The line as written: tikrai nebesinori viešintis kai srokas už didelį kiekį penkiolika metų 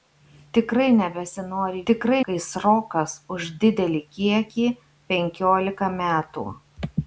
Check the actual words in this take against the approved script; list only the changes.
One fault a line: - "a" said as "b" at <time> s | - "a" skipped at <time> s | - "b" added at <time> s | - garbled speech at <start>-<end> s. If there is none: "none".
- "viešintis" said as "tikrai" at 1.9 s